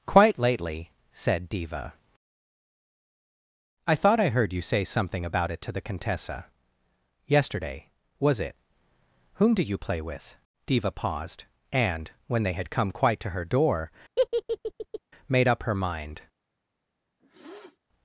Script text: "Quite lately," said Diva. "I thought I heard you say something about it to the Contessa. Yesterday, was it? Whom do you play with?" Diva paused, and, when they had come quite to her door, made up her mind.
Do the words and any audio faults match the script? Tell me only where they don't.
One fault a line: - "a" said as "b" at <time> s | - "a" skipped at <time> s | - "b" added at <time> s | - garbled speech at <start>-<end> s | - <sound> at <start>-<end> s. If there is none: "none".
- laugh at 14.2-15.0 s
- sniff at 17.2-17.8 s